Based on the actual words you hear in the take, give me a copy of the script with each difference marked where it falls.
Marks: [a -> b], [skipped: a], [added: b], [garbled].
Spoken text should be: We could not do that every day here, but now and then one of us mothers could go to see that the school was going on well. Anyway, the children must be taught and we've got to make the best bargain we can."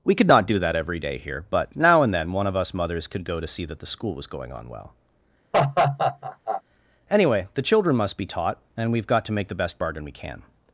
We could not do that every day here, but now and then one of us mothers could go to see that the school was going on well. Anyway, the children must be taught and we've got to make the best bargain we can."